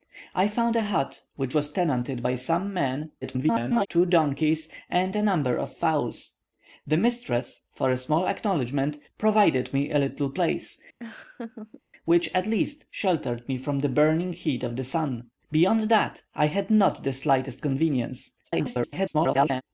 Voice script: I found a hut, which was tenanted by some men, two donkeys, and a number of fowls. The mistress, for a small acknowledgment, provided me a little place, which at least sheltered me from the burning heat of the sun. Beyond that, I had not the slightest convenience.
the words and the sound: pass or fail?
fail